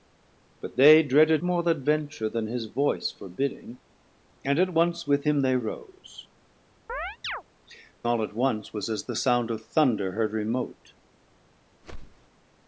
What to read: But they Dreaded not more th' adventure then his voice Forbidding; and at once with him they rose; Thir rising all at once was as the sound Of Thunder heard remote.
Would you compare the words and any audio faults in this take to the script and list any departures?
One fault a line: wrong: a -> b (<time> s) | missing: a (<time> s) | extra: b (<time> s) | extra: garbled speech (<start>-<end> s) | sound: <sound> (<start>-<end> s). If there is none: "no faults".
missing: not (1.4 s)
missing: Thir rising (6.3 s)
sound: chirp (6.9-7.4 s)
sound: whoosh (11.8-12.3 s)